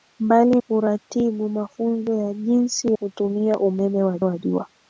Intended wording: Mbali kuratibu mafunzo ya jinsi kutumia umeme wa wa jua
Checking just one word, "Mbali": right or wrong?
right